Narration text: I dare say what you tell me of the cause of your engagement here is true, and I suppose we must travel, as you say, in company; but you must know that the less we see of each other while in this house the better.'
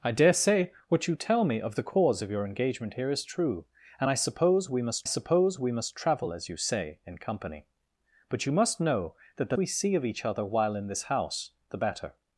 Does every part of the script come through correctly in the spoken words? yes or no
no